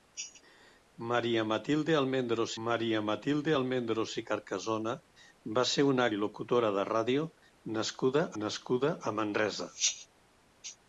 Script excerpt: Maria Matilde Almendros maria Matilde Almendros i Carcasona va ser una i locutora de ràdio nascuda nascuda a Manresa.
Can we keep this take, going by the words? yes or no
yes